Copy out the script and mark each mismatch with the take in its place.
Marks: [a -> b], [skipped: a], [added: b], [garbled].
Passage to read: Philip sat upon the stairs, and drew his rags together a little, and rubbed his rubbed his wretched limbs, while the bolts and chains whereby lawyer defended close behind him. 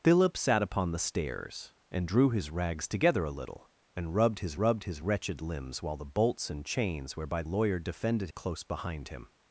Philip sat upon the stairs, and drew his rags together a little, and rubbed his rubbed his wretched limbs, while the bolts and chains whereby lawyer defended close behind him.